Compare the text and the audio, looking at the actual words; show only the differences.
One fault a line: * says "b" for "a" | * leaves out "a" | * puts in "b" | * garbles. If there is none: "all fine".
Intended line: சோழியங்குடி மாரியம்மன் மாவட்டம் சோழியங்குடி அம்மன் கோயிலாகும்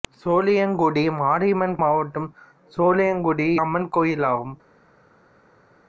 all fine